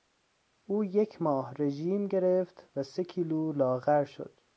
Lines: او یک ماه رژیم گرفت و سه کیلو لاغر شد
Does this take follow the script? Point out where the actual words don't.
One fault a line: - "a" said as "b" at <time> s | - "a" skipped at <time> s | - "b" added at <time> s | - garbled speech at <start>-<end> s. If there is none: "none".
none